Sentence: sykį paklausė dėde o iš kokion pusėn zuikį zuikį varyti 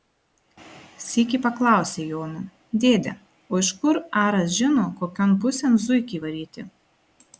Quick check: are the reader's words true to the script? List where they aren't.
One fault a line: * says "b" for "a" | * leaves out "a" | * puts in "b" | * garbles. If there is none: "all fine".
* puts in "jono"
* puts in "kur aras žino"
* leaves out "zuikį"